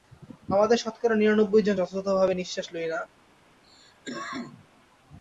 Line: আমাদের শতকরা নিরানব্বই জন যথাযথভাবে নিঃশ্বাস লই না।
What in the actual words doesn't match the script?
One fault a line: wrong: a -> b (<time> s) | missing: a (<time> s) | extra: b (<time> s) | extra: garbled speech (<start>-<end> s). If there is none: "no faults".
no faults